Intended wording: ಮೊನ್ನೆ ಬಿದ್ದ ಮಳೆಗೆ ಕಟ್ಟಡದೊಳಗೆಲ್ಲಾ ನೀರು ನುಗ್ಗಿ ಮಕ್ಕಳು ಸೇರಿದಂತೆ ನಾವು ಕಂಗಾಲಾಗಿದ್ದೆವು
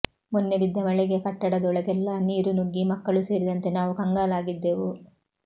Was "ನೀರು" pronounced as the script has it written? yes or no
yes